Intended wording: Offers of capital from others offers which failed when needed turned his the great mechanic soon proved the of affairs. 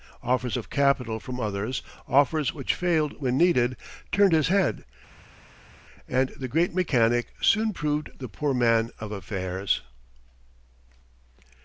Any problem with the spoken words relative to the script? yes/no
yes